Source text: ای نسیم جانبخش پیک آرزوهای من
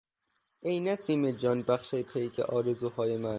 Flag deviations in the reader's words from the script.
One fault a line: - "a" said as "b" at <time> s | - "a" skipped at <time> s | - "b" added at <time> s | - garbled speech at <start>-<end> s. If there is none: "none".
none